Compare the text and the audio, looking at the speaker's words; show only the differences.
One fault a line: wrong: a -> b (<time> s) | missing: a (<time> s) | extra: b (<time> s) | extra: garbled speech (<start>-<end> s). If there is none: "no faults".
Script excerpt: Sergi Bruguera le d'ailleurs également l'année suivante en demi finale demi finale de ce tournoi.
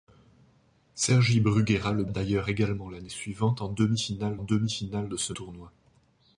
no faults